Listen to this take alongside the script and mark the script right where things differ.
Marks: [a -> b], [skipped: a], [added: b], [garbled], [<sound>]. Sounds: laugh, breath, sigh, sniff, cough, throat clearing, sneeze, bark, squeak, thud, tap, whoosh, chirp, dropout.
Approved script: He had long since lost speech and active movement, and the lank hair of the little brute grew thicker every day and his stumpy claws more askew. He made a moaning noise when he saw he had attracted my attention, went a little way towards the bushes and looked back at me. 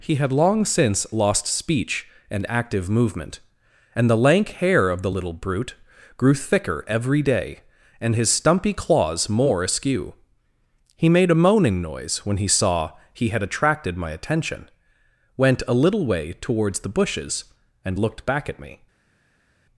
He had long since lost speech and active movement, and the lank hair of the little brute grew thicker every day and his stumpy claws more askew. He made a moaning noise when he saw he had attracted my attention, went a little way towards the bushes and looked back at me.